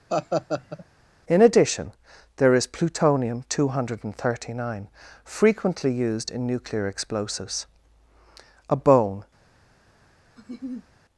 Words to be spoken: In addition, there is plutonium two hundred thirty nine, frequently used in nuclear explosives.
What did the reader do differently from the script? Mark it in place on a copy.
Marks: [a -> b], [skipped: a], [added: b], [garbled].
In addition, there is plutonium two hundred thirty nine, frequently used in nuclear explosives. [added: A bone]